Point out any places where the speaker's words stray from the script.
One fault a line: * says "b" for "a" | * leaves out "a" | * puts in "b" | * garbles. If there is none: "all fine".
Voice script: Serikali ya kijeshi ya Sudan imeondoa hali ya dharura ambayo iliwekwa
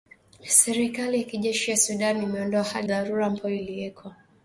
* leaves out "ya"